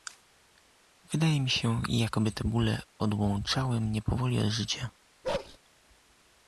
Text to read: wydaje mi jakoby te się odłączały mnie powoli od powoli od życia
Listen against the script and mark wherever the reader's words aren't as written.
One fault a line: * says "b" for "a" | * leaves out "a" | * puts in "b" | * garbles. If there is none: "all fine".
* puts in "się"
* says "bóle" for "się"
* leaves out "powoli od"